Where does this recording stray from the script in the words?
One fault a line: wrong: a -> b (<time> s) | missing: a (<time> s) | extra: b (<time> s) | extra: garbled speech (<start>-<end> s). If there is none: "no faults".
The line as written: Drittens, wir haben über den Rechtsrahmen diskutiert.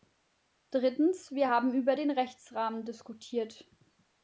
no faults